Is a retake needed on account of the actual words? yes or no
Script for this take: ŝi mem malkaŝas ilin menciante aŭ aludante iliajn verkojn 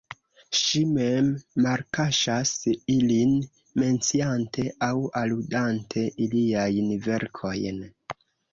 no